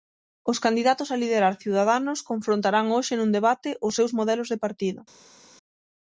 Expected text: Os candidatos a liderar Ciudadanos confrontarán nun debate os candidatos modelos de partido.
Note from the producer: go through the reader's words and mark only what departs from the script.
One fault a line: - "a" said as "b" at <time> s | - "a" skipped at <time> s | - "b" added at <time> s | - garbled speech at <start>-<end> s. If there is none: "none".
- "hoxe" added at 3.0 s
- "candidatos" said as "seus" at 4.0 s